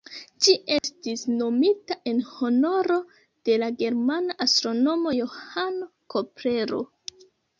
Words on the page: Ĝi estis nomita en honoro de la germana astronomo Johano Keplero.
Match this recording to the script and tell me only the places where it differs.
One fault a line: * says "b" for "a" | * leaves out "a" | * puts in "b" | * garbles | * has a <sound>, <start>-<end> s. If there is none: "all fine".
* has a dropout, 0.8-0.8 s